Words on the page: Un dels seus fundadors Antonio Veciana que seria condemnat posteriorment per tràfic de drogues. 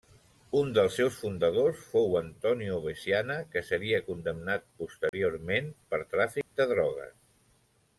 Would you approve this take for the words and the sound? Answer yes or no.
no